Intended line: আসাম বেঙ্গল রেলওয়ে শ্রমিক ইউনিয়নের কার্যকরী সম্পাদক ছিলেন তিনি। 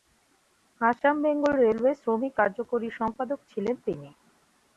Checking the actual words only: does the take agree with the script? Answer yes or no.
no